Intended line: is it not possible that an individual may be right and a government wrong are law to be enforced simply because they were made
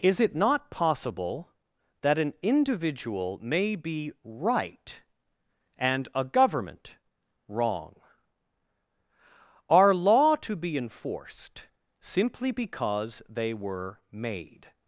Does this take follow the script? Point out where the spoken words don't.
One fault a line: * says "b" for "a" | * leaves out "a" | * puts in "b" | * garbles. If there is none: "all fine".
all fine